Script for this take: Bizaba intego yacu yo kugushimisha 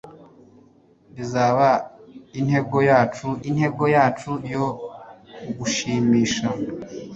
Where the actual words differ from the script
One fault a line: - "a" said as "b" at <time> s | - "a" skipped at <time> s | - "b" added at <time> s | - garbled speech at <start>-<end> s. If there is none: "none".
- "intego yacu" added at 3.5 s